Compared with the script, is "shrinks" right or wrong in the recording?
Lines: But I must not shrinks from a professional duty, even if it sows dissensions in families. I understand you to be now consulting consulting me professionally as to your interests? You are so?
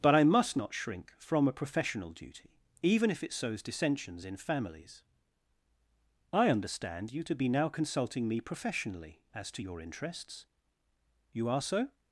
wrong